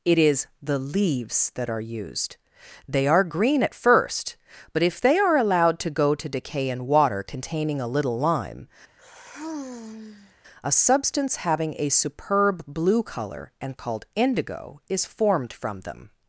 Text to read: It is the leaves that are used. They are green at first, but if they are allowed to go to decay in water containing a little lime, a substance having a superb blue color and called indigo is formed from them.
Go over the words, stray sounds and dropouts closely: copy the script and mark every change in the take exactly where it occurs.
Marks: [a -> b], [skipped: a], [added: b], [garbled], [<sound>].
It is the leaves that are used. They are green at first, but if they are allowed to go to decay in water containing a little lime, [sigh] a substance having a superb blue color and called indigo is formed from them.